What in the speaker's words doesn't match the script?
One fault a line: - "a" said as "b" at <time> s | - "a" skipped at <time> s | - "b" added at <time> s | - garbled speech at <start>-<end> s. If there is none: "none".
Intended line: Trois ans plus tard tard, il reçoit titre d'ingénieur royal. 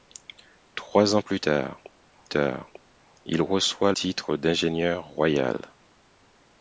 none